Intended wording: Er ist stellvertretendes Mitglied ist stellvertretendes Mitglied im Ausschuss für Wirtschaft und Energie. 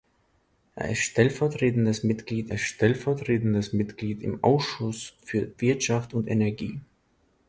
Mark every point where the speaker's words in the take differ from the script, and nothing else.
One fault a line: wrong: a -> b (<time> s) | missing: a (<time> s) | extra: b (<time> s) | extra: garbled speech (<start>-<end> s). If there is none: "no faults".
no faults